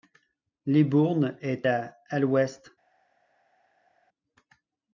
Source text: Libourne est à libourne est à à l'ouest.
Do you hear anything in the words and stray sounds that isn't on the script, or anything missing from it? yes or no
yes